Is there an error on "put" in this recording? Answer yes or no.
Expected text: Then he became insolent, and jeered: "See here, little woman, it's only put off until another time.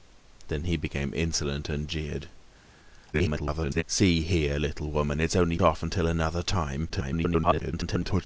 yes